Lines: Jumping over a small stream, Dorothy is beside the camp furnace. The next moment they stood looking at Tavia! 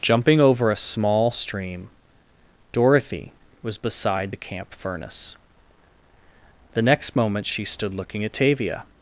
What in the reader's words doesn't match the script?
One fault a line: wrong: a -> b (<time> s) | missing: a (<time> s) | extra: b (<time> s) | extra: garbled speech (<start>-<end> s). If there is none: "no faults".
wrong: is -> was (3.6 s)
wrong: they -> she (7.5 s)